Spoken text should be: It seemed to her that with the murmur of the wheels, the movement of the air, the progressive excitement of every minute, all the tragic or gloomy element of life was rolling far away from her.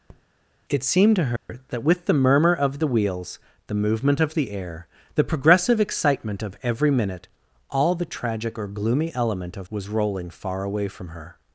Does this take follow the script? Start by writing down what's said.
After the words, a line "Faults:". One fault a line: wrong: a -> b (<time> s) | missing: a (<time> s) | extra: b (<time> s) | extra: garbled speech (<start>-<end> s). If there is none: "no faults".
It seemed to her that with the murmur of the wheels, the movement of the air, the progressive excitement of every minute, all the tragic or gloomy element of was rolling far away from her.
Faults:
missing: life (9.7 s)